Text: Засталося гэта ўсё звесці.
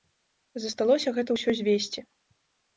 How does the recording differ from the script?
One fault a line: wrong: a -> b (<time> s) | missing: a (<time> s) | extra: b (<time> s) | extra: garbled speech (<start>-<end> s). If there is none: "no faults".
no faults